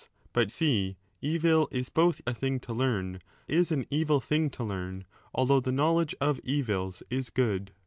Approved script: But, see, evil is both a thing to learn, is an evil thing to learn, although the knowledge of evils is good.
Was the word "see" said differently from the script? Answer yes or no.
no